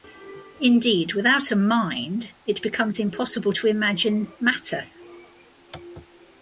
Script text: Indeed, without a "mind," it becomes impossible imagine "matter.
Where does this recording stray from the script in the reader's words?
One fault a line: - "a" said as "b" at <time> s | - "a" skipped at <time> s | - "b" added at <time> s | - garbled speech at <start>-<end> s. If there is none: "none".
- "to" added at 3.5 s